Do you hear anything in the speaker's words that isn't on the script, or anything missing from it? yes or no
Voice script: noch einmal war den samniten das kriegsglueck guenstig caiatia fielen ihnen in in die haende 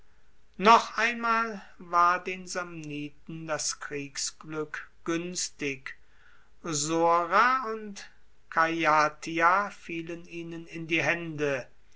yes